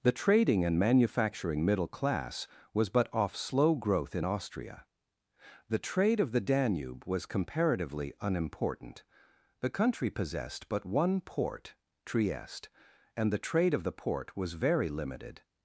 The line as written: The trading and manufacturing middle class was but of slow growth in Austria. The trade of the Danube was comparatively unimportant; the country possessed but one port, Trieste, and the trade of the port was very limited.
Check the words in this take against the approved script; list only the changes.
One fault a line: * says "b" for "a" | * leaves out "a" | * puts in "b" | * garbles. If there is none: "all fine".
* says "off" for "of"